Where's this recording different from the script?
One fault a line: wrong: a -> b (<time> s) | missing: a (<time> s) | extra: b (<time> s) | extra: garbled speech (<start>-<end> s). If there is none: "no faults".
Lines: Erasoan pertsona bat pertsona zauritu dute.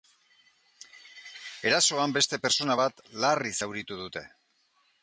extra: beste (2.2 s)
wrong: pertsona -> larri (3.3 s)